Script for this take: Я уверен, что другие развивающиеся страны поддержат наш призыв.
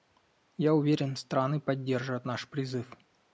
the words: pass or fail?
fail